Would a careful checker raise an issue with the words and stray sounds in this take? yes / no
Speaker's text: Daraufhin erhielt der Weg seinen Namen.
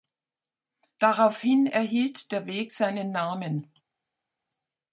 no